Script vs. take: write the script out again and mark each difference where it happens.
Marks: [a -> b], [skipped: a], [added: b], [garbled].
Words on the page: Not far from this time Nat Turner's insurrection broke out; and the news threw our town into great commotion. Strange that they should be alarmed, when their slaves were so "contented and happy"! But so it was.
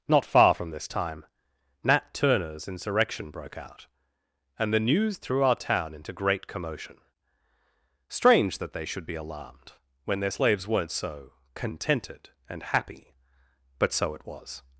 Not far from this time Nat Turner's insurrection broke out; and the news threw our town into great commotion. Strange that they should be alarmed, when their slaves [were -> weren't] so "contented and happy"! But so it was.